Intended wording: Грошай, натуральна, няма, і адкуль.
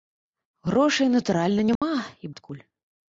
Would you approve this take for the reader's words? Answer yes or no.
yes